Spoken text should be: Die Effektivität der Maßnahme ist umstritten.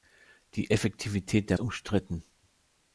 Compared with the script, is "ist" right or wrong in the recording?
wrong